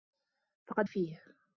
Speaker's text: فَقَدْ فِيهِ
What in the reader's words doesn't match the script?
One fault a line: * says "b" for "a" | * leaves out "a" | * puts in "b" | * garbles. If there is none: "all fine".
all fine